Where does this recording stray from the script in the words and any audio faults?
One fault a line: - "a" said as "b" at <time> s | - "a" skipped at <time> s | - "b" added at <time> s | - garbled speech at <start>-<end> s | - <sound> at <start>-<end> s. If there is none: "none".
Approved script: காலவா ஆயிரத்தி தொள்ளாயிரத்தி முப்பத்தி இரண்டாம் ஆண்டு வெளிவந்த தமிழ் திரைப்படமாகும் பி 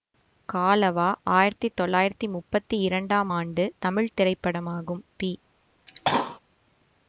- "வெளிவந்த" skipped at 3.6 s
- cough at 5.9-6.4 s